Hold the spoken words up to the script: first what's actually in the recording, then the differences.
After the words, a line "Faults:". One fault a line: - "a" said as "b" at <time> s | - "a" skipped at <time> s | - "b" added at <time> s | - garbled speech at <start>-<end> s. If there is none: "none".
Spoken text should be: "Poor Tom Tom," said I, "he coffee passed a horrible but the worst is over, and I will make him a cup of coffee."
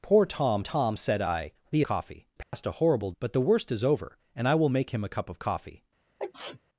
"Poor Tom Tom," said I, "he coffee passed a horrible but the worst is over, and I will make him a cup of coffee."
Faults:
none